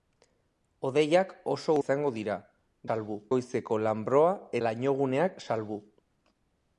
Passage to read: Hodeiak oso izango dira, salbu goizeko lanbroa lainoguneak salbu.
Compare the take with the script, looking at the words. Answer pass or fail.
pass